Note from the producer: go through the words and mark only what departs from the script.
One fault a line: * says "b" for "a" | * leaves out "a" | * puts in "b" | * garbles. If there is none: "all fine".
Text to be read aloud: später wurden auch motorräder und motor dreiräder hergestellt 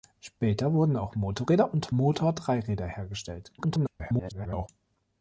* garbles